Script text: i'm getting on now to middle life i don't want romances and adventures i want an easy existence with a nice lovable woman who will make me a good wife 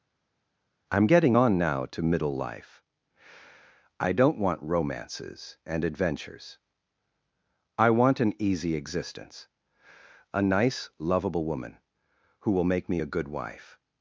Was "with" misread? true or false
true